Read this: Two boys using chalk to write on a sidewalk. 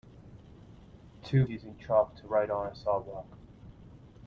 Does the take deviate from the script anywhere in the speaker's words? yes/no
yes